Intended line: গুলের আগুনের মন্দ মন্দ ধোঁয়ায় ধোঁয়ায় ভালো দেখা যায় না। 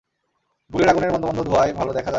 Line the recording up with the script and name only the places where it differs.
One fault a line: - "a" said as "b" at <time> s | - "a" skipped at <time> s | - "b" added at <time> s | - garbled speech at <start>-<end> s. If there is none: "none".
- "ধোঁয়ায়" skipped at 1.7 s